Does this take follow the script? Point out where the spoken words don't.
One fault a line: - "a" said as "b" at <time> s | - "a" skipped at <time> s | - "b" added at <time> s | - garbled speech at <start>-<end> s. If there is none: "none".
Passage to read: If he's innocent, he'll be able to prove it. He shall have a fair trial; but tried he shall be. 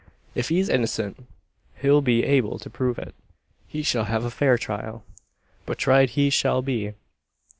none